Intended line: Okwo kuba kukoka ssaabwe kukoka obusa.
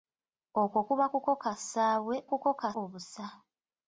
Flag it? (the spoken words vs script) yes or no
no